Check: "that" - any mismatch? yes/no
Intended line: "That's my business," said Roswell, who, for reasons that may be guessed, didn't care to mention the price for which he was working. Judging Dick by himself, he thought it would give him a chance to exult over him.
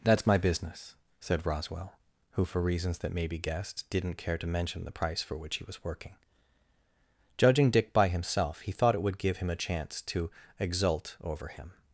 no